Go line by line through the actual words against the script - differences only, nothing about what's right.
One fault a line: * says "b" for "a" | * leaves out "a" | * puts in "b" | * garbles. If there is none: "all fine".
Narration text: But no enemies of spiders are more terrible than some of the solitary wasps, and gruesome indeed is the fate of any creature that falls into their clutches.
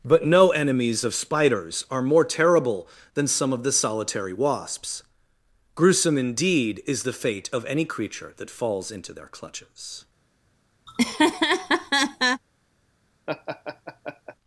* leaves out "and"